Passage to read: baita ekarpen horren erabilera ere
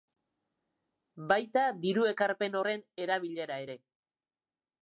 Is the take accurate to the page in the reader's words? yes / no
no